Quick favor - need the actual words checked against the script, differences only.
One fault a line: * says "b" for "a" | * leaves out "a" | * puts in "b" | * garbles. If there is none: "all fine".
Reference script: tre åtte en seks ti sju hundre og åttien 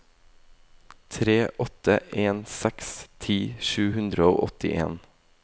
all fine